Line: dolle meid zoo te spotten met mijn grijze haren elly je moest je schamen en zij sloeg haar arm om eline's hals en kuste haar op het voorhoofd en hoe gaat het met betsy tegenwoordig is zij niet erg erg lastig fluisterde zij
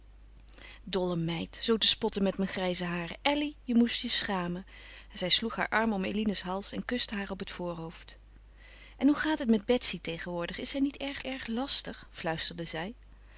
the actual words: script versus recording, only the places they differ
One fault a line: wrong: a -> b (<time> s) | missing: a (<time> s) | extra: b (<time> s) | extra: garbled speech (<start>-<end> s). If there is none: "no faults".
no faults